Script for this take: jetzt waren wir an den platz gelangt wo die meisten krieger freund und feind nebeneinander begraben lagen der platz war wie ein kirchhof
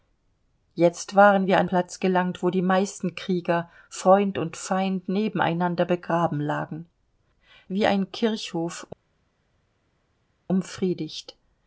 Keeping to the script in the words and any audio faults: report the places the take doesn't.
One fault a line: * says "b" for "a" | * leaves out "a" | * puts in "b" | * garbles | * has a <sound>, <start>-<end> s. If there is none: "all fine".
* leaves out "den"
* leaves out "der platz war"